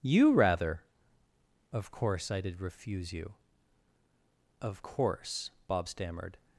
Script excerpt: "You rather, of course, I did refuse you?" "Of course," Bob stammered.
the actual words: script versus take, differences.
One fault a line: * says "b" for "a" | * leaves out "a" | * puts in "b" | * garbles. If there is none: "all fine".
all fine